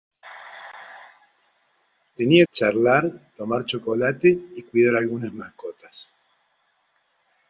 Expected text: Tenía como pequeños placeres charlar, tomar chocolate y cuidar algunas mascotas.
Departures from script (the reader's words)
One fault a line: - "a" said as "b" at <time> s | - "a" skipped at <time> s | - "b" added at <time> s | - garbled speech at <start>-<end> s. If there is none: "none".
- "como pequeños placeres" skipped at 2.5 s